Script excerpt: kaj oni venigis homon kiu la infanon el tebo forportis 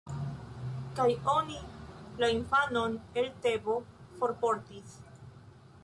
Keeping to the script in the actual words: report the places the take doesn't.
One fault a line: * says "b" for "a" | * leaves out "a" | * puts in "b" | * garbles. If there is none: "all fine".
* leaves out "venigis homon kiu"